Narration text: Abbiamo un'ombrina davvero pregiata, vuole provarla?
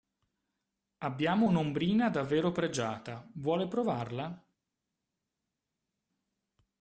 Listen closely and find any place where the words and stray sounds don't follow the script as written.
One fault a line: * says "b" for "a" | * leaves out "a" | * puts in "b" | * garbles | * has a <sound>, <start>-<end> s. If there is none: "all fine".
all fine